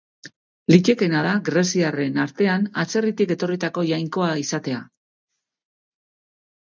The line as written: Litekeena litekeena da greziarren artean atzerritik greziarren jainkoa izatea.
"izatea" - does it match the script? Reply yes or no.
yes